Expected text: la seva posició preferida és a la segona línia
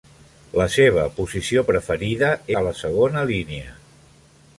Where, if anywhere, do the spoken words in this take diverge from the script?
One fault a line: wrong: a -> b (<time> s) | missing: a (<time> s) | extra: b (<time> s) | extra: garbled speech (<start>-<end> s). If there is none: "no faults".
missing: és (2.3 s)